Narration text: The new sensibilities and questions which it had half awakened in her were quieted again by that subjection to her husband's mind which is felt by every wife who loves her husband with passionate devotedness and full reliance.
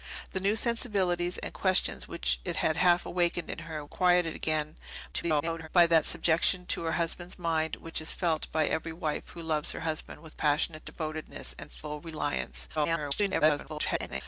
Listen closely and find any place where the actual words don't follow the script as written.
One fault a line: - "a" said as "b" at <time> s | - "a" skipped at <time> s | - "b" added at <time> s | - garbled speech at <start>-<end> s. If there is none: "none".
- "were" skipped at 3.9 s
- garbled speech at 5.1-5.7 s
- garbled speech at 12.8-14.2 s